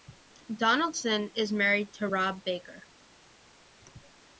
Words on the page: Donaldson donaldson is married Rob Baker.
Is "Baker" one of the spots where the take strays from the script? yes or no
no